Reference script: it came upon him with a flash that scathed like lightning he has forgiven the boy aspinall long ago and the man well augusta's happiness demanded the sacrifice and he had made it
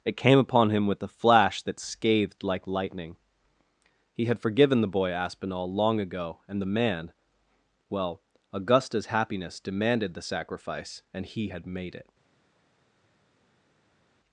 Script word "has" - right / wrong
wrong